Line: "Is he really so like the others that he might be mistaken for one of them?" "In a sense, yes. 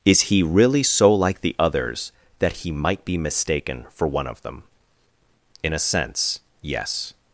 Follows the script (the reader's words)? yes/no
yes